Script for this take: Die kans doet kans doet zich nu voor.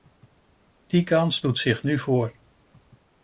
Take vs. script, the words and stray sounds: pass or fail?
fail